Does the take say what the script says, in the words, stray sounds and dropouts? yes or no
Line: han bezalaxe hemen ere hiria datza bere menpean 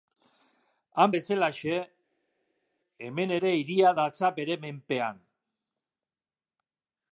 yes